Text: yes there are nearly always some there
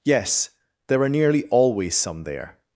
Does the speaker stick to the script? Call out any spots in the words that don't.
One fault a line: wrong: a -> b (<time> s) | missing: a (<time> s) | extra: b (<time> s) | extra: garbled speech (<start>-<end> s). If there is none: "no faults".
no faults